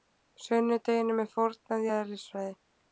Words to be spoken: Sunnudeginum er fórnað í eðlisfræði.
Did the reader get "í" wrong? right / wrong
right